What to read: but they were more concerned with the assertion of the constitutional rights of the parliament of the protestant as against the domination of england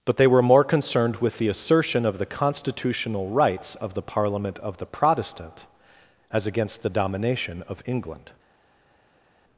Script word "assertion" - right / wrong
right